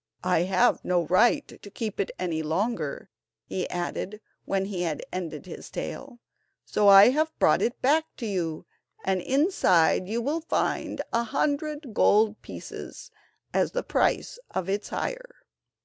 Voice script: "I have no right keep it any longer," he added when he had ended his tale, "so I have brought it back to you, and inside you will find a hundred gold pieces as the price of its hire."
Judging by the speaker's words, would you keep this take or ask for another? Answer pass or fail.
fail